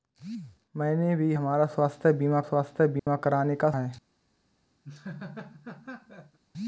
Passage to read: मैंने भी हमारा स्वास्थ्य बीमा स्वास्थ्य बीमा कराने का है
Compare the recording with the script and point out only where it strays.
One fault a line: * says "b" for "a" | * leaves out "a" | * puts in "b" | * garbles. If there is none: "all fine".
all fine